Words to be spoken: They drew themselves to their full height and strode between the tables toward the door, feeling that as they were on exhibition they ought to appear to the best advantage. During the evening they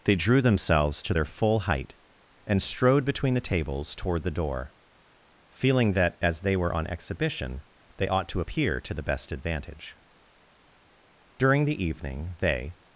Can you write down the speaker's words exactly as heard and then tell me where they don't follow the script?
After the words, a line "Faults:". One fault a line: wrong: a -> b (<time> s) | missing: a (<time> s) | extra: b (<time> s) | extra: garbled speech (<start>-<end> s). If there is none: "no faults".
They drew themselves to their full height and strode between the tables toward the door, feeling that as they were on exhibition they ought to appear to the best advantage. During the evening they
Faults:
no faults